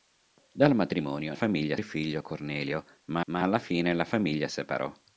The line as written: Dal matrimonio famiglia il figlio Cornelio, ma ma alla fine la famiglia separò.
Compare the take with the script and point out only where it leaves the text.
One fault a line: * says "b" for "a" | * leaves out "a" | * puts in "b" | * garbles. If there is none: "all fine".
all fine